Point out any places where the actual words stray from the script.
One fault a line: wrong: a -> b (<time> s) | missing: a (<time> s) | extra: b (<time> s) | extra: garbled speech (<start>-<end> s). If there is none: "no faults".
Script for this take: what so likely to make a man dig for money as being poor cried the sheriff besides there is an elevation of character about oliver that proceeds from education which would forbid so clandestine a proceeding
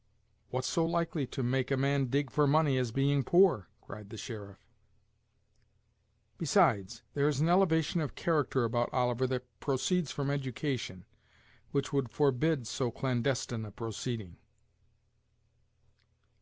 no faults